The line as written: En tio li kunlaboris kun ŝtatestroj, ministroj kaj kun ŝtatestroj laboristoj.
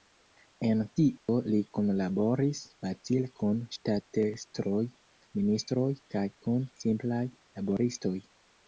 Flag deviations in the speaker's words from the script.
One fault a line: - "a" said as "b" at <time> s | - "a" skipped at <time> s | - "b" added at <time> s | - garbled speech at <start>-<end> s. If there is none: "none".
- "facile" added at 2.9 s
- "ŝtatestroj" said as "simplaj" at 6.9 s